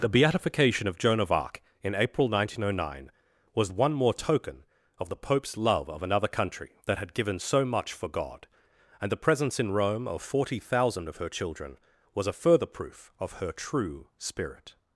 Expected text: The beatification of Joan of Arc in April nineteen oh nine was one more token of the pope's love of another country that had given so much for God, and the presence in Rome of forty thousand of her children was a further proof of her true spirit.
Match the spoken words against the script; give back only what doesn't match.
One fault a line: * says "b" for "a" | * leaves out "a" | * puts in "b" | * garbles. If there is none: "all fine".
all fine